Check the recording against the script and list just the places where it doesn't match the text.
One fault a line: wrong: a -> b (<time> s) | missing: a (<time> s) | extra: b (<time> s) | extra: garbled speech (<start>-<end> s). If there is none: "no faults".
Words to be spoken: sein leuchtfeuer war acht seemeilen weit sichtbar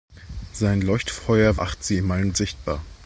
missing: war (1.6 s)
missing: weit (2.3 s)